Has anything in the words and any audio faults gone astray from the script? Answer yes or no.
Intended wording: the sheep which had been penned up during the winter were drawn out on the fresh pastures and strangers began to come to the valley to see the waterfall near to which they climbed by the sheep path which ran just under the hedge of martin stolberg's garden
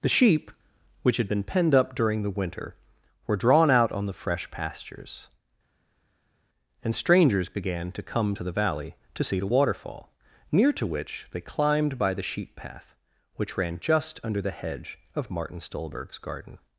no